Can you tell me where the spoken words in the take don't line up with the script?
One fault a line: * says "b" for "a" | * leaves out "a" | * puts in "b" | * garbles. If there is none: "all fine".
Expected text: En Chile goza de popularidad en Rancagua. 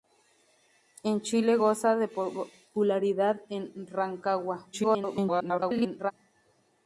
* garbles